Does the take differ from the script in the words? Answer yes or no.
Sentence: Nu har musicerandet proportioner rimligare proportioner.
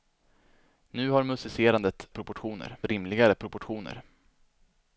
no